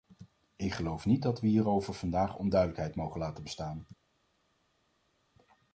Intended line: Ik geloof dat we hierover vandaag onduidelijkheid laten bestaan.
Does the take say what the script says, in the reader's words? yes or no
no